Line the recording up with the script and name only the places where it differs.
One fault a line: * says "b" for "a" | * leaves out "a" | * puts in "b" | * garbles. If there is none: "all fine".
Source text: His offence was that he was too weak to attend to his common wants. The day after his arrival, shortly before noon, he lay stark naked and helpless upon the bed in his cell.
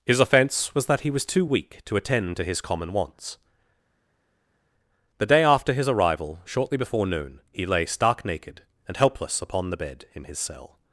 all fine